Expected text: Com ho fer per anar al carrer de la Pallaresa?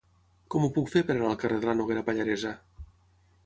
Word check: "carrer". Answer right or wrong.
right